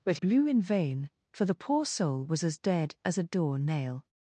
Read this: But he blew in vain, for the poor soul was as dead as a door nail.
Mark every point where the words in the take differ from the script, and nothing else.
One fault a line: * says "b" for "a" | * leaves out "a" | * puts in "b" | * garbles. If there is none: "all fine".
* leaves out "he"